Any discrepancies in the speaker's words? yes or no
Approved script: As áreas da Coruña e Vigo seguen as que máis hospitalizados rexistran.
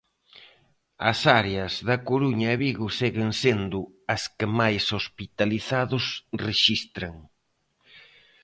yes